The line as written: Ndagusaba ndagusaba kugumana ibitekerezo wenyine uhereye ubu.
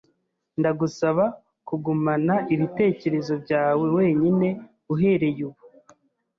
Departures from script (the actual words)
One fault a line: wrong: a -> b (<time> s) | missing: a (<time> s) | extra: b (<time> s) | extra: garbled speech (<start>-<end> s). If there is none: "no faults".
missing: ndagusaba (1.2 s)
extra: byawe (3.4 s)